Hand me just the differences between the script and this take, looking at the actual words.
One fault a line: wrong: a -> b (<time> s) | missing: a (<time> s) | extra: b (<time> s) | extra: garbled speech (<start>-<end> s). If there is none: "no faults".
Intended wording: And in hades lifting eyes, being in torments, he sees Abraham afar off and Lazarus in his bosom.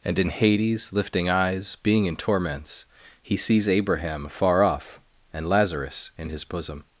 no faults